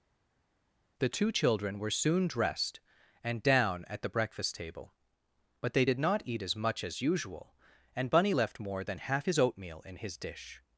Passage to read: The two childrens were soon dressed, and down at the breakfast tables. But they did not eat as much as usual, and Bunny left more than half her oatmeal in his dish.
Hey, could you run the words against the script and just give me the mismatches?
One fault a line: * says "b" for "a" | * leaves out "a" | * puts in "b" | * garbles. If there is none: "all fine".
* says "children" for "childrens"
* says "table" for "tables"
* says "his" for "her"